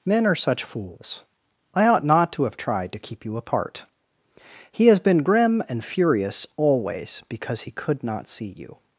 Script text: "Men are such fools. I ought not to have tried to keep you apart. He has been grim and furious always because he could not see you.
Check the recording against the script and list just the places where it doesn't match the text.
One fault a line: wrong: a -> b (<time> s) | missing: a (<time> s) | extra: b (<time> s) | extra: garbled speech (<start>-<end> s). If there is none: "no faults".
no faults